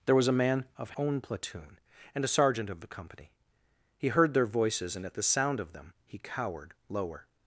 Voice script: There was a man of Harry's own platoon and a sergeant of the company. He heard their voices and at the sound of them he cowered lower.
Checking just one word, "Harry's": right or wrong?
wrong